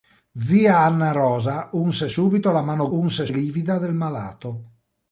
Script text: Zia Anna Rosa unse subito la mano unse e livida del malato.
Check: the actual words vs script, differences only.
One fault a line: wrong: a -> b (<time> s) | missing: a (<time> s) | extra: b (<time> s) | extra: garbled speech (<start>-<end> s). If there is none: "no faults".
no faults